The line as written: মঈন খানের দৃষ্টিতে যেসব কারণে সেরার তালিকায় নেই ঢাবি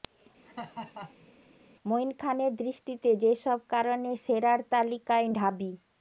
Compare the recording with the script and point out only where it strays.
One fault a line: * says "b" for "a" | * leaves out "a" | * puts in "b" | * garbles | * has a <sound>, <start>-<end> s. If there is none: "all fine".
* has a laugh, 0.4-1.3 s
* leaves out "নেই"